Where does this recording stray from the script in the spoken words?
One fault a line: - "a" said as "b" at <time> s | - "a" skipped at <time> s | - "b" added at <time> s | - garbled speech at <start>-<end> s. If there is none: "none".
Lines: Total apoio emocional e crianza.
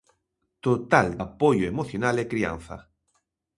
none